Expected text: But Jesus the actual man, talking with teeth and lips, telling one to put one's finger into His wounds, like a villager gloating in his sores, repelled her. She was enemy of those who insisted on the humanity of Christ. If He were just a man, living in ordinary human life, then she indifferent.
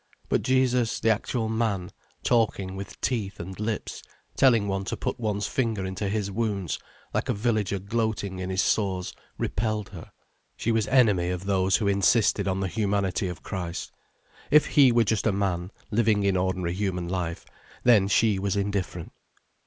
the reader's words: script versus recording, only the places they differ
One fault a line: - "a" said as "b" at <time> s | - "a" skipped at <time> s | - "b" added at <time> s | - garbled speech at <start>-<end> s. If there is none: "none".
- "was" added at 18.4 s